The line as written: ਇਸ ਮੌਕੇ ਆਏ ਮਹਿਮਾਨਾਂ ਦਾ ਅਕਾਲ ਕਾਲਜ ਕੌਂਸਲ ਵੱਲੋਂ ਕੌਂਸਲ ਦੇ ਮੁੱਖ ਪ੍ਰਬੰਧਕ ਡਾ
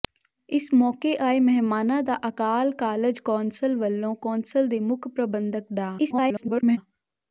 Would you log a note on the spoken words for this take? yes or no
yes